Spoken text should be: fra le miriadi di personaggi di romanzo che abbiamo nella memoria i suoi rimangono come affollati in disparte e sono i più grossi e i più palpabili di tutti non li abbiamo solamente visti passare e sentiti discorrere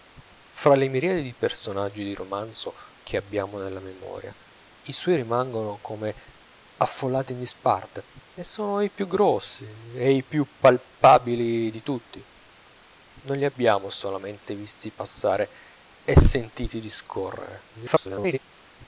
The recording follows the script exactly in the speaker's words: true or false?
false